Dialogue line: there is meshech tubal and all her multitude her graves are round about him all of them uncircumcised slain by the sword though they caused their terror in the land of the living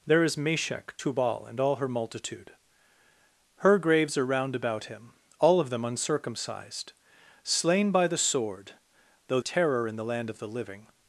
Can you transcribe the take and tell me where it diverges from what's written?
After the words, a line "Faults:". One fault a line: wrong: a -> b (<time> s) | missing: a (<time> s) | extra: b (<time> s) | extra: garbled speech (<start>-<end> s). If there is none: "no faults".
there is meshech tubal and all her multitude her graves are round about him all of them uncircumcised slain by the sword though terror in the land of the living
Faults:
missing: they caused their (9.4 s)